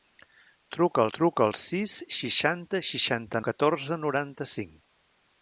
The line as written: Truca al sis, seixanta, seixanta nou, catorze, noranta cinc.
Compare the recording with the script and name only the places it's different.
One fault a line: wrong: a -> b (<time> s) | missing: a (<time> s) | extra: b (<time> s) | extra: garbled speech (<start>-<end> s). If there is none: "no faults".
extra: truca al (1.2 s)
missing: nou (3.4 s)